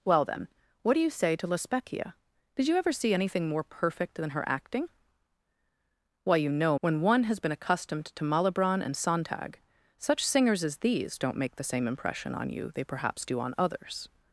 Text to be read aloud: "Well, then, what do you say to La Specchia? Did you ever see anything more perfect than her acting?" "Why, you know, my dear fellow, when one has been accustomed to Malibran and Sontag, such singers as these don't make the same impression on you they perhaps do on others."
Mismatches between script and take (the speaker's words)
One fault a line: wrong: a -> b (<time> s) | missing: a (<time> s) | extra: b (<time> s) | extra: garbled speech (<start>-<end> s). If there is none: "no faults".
missing: my dear fellow (6.8 s)